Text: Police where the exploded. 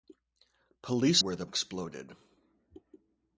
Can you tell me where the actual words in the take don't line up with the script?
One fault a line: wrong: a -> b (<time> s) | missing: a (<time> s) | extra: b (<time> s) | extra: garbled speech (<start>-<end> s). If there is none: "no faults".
no faults